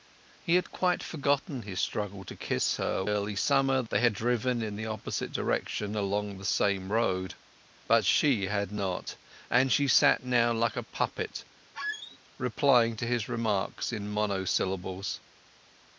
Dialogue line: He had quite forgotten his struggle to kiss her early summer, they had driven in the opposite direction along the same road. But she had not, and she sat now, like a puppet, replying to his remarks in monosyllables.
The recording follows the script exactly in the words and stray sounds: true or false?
false